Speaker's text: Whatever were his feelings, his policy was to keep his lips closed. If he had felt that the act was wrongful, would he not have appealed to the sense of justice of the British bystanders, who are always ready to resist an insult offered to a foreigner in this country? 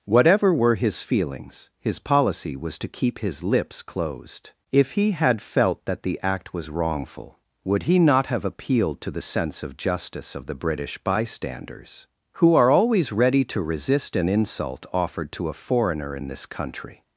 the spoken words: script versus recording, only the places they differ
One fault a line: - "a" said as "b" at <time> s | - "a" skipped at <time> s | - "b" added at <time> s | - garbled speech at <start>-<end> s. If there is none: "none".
none